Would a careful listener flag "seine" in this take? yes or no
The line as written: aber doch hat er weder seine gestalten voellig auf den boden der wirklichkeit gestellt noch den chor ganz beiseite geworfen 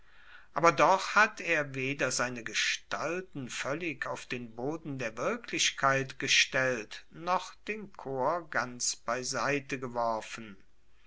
no